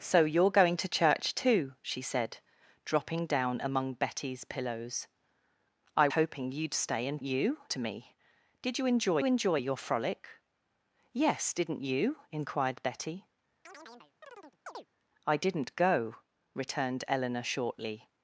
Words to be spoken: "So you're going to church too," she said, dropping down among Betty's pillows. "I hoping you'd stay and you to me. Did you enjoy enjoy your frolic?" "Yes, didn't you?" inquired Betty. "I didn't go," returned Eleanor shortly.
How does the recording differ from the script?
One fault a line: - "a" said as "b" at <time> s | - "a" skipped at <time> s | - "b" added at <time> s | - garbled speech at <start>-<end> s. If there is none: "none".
none